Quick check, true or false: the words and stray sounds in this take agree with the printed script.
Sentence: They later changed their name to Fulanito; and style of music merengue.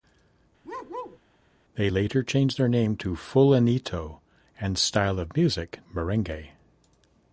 false